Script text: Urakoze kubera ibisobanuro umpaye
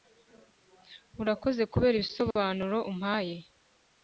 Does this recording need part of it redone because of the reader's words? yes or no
no